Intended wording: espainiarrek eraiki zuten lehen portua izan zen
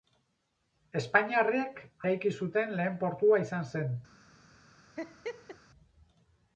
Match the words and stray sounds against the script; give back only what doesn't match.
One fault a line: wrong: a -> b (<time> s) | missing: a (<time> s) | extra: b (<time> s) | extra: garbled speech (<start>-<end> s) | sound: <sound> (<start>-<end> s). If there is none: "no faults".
sound: laugh (5.0-5.6 s)